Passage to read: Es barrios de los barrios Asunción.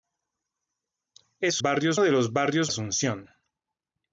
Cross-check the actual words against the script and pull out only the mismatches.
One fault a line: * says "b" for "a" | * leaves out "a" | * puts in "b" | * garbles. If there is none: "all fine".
all fine